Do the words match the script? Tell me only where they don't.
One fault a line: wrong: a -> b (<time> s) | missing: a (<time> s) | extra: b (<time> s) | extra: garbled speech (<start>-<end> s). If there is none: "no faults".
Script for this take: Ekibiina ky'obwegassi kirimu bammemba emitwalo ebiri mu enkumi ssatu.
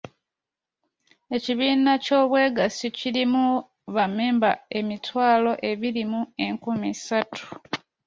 no faults